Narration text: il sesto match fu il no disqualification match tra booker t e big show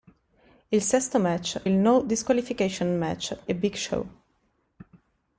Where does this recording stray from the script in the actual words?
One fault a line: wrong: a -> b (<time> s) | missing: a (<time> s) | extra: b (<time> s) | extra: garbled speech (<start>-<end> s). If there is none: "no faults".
missing: fu (1.6 s)
missing: tra booker t (3.5 s)